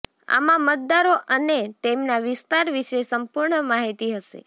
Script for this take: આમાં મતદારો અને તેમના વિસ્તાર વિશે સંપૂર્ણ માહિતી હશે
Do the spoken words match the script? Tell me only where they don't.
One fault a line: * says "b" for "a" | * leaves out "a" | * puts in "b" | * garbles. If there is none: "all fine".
all fine